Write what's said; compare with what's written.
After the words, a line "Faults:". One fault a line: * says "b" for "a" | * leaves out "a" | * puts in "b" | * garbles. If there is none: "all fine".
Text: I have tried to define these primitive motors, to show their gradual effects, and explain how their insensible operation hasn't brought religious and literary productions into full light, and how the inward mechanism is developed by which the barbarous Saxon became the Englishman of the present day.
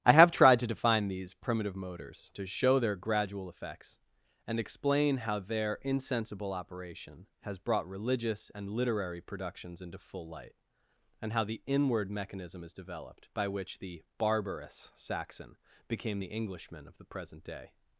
I have tried to define these primitive motors, to show their gradual effects, and explain how their insensible operation has brought religious and literary productions into full light, and how the inward mechanism is developed by which the barbarous Saxon became the Englishman of the present day.
Faults:
* says "has" for "hasn't"